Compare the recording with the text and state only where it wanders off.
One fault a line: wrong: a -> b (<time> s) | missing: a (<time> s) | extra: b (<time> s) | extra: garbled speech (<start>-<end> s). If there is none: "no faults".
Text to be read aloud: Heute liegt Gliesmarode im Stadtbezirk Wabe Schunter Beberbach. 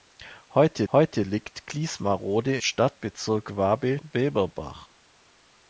extra: heute (0.9 s)
missing: im (2.6 s)
missing: Schunter (4.0 s)